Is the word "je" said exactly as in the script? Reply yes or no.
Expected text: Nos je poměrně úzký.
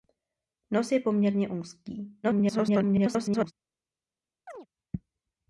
yes